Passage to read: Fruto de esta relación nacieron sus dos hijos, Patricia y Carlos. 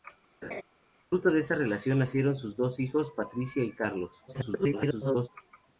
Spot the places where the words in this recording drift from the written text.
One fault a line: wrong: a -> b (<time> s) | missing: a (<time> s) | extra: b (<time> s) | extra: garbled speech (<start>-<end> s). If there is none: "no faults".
extra: garbled speech (4.3-5.3 s)